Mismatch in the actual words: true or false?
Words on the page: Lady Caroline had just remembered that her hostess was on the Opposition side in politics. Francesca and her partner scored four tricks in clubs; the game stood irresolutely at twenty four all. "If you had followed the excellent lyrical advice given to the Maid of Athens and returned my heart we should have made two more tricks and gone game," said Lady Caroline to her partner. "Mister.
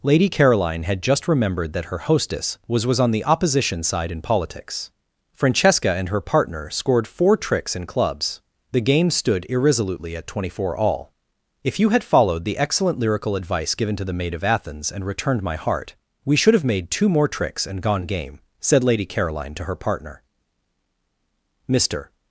true